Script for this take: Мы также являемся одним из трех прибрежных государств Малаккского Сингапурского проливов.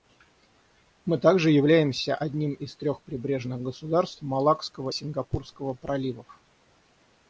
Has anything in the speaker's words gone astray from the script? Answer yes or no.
no